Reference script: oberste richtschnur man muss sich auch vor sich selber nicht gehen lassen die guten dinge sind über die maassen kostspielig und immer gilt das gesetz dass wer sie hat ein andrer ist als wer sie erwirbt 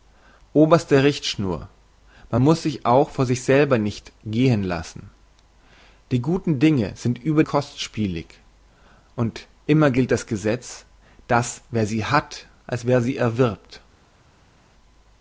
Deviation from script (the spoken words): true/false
true